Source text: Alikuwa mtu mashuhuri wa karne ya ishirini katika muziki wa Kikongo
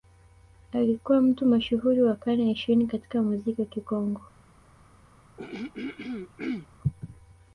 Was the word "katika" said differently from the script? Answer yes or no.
no